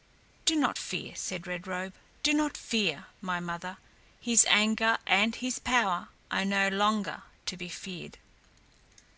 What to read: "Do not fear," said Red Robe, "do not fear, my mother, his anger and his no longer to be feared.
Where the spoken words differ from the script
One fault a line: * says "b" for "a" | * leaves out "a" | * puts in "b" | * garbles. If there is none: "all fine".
* puts in "power are"